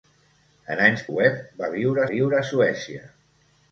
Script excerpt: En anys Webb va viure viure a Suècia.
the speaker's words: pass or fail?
pass